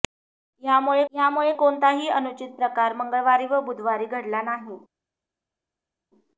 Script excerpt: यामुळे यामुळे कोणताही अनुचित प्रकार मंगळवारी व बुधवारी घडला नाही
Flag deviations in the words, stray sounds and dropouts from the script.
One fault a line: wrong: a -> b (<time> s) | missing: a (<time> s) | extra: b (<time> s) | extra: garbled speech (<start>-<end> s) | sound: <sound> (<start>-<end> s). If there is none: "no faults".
no faults